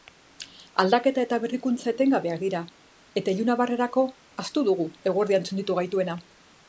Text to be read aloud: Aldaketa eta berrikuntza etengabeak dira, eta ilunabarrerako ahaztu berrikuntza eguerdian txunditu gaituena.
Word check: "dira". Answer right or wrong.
right